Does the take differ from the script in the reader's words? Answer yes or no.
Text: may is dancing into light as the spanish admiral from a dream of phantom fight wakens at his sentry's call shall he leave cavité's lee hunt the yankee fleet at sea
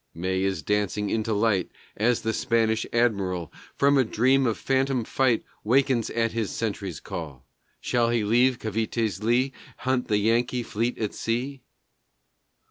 no